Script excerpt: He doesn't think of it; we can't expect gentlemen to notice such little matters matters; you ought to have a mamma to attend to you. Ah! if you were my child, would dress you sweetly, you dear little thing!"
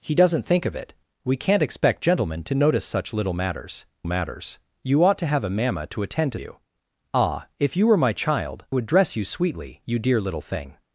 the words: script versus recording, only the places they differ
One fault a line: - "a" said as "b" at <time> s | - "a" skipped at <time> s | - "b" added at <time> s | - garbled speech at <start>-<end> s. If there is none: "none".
none